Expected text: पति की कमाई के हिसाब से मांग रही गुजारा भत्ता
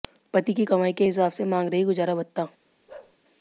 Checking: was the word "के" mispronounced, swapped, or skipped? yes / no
no